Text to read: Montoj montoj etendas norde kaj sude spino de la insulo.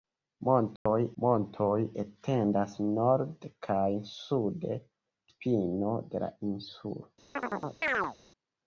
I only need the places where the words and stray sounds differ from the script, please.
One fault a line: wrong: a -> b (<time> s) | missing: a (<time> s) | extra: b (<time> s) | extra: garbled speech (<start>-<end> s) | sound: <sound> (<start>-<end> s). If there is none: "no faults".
sound: dropout (0.8-0.9 s)
sound: chirp (7.4-8.2 s)